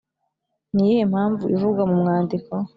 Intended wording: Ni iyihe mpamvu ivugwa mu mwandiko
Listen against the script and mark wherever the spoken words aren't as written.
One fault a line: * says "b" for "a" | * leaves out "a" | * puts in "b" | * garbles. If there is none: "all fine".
all fine